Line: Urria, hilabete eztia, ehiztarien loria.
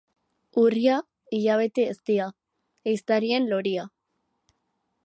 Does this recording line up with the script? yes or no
yes